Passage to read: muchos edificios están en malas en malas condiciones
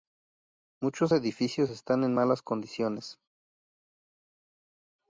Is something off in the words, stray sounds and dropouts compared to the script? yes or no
yes